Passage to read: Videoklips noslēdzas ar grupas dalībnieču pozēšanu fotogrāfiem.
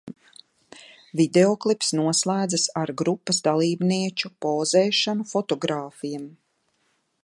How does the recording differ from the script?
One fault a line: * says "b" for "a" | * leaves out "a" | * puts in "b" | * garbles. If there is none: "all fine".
all fine